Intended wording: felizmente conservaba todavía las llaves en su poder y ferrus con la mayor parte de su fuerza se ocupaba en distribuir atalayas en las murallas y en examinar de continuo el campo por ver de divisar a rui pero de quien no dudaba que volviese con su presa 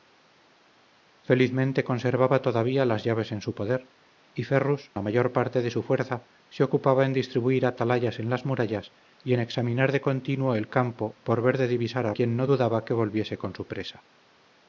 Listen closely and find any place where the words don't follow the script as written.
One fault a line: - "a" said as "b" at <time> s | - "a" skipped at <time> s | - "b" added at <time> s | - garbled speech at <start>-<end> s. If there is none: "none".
- "con" skipped at 4.9 s
- "rui pero de" skipped at 12.1 s